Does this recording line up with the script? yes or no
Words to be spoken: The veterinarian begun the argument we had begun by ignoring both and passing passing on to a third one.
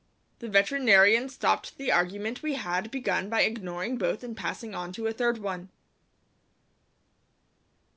no